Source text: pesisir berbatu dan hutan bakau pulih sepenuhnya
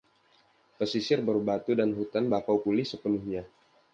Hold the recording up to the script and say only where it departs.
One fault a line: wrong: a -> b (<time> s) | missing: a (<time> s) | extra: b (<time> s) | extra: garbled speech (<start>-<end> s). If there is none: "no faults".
no faults